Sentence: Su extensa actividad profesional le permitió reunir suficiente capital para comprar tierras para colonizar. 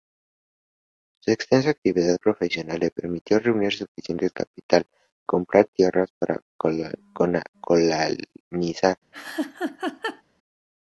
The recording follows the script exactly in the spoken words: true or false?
false